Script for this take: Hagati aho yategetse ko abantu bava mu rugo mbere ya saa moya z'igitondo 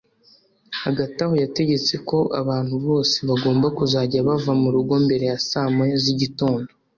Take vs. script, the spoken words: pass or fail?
fail